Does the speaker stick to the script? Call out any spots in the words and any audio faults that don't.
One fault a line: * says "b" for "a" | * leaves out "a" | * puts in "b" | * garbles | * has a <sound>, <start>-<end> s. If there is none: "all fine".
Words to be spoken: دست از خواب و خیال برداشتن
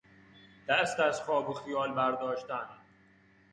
all fine